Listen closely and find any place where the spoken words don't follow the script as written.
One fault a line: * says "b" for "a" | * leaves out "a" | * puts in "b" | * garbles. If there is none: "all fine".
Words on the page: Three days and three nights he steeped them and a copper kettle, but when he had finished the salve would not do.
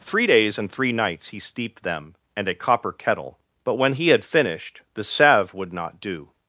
all fine